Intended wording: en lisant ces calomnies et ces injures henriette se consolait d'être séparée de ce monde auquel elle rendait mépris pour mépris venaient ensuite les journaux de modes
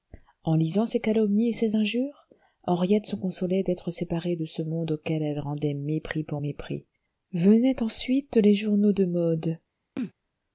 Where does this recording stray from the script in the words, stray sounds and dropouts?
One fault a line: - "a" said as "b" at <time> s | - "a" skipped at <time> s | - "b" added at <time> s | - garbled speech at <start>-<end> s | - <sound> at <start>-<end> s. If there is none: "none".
- sneeze at 10.0-10.1 s